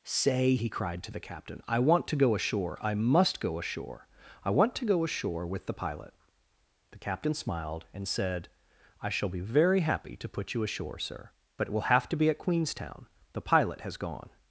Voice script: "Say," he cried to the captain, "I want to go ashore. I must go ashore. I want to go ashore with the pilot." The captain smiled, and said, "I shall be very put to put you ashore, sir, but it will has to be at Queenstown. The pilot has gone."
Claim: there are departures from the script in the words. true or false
true